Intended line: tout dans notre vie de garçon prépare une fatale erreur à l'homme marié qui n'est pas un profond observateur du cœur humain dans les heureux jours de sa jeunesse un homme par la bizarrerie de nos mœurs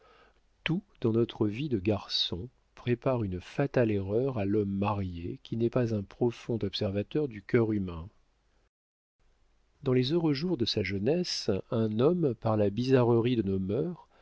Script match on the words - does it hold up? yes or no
yes